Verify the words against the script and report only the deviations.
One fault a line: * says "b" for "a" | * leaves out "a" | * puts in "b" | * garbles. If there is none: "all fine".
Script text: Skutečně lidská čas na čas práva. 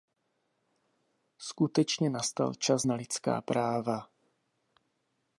* says "nastal" for "lidská"
* says "lidská" for "čas"